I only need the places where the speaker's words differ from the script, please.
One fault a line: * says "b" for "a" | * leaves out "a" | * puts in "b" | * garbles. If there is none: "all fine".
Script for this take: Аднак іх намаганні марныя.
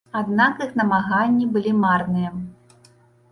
* puts in "былі"